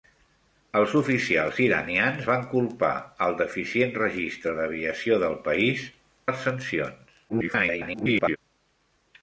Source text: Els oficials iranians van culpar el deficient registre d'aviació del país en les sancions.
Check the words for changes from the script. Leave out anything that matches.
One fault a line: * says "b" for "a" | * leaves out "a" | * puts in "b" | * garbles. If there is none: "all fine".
* leaves out "en"
* garbles